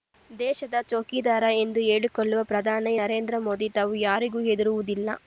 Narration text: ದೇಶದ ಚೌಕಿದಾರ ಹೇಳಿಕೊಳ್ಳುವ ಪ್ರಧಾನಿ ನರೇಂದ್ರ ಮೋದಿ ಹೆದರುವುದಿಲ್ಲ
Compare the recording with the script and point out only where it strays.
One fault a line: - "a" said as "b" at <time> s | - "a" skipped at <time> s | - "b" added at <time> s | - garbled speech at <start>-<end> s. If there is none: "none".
- "ಎಂದು" added at 1.6 s
- "ತಾವು ಯಾರಿಗೂ" added at 3.8 s